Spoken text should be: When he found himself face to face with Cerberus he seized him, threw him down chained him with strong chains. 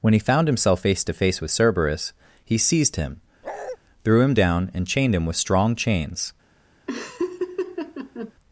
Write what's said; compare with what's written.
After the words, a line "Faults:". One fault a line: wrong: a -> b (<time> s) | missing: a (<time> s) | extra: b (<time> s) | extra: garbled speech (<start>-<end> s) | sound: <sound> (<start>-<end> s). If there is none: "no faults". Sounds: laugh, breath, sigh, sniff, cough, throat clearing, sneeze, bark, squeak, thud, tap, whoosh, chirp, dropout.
When he found himself face to face with Cerberus he seized him, threw him down and chained him with strong chains.
Faults:
sound: bark (3.4-3.8 s)
extra: and (4.7 s)
sound: laugh (6.9-8.3 s)